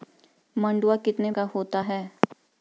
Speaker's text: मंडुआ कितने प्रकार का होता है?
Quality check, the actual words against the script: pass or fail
fail